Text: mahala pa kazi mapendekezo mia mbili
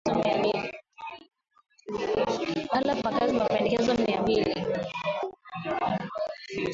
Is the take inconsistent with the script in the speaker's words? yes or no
no